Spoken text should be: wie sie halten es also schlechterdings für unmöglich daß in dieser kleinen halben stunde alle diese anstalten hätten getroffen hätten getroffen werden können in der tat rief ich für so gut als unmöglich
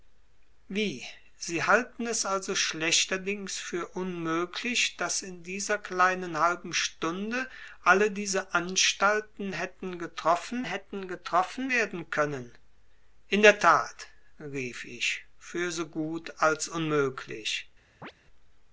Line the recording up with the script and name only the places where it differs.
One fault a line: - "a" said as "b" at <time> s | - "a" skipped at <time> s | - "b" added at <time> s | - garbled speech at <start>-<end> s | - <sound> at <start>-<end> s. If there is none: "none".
- chirp at 18.0-18.1 s